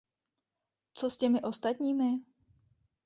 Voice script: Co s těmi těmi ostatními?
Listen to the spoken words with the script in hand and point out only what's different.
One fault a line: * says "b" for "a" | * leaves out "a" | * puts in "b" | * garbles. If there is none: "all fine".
* leaves out "těmi"